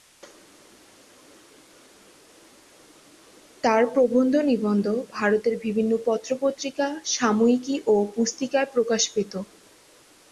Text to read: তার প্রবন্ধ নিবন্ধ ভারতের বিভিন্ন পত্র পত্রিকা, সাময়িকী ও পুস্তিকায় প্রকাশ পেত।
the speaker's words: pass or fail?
pass